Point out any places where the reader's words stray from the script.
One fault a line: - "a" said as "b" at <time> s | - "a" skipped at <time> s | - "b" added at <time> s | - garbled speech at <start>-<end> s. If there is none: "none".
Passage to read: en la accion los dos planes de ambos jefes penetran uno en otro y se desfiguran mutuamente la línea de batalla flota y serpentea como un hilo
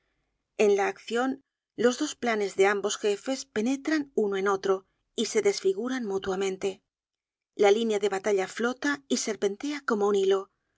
none